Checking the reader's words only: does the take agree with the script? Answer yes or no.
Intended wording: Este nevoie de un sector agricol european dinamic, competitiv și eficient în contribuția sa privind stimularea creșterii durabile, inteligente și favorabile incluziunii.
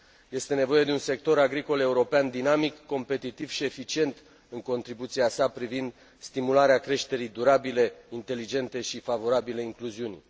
yes